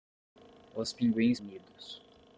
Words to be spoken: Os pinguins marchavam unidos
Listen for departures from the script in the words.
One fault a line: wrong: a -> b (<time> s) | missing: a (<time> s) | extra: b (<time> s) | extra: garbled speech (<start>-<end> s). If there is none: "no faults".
missing: marchavam (1.4 s)